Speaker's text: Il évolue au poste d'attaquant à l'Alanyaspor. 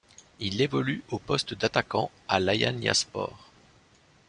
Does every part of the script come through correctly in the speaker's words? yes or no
yes